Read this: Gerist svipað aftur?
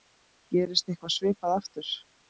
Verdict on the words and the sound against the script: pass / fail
fail